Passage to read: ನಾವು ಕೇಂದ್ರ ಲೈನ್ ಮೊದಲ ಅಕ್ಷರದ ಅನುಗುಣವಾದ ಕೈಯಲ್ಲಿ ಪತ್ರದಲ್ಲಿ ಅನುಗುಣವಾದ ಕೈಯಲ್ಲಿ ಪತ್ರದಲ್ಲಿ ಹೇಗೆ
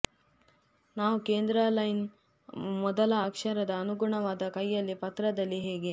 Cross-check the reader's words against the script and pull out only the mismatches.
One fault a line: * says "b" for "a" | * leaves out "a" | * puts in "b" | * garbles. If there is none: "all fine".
* leaves out "ಅನುಗುಣವಾದ ಕೈಯಲ್ಲಿ ಪತ್ರದಲ್ಲಿ"